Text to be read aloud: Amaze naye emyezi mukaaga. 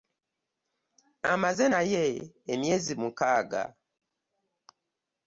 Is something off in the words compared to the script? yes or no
no